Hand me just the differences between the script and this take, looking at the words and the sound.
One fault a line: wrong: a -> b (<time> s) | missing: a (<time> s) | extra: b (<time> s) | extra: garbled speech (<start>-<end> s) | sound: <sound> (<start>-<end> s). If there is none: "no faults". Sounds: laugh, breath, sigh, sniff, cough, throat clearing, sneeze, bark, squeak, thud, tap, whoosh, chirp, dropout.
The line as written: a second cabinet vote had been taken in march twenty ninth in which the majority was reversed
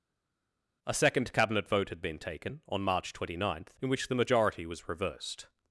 wrong: in -> on (2.7 s)